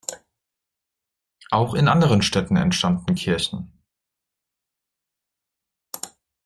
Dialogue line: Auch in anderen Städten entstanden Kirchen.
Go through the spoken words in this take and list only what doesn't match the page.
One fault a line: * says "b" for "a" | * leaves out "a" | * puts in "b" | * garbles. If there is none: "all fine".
all fine